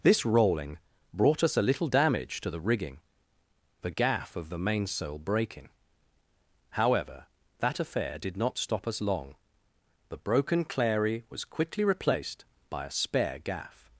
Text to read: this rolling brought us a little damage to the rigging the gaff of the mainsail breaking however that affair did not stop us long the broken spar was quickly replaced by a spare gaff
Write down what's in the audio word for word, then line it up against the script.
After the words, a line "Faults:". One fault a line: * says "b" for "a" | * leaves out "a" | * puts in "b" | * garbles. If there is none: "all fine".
this rolling brought us a little damage to the rigging the gaff of the mainsail breaking however that affair did not stop us long the broken clary was quickly replaced by a spare gaff
Faults:
* says "clary" for "spar"